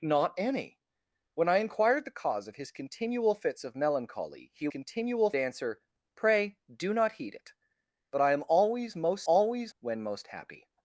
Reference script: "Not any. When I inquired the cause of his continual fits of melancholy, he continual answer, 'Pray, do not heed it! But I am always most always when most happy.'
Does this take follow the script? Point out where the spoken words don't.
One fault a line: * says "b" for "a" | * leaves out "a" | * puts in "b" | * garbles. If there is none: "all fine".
all fine